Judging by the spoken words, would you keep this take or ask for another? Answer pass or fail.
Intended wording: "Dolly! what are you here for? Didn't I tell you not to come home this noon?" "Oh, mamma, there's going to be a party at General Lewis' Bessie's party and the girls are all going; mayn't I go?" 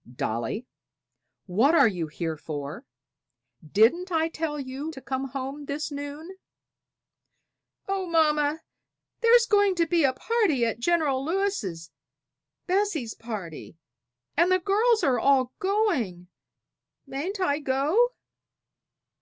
fail